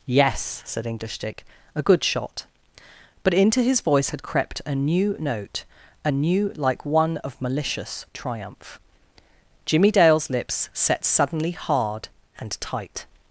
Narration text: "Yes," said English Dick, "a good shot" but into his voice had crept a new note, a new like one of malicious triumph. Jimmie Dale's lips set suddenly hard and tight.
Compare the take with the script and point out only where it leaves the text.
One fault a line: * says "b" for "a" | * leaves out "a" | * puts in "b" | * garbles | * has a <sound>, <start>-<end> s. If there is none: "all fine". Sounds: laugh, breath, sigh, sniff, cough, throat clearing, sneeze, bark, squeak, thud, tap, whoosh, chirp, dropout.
all fine